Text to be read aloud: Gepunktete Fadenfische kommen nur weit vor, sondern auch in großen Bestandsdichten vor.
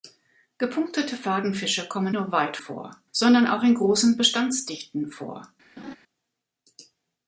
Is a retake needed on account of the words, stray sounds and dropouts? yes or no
yes